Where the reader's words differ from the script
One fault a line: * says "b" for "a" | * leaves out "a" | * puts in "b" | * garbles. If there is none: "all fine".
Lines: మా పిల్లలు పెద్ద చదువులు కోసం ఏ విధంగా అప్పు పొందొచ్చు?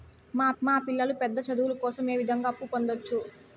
* puts in "మా"